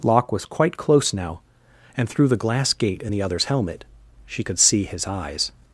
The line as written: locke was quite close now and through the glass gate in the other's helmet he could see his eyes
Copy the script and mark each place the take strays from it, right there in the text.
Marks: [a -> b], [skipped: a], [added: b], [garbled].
locke was quite close now and through the glass gate in the other's helmet [he -> she] could see his eyes